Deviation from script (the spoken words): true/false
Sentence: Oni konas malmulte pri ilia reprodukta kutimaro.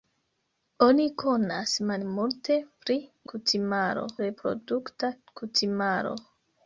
true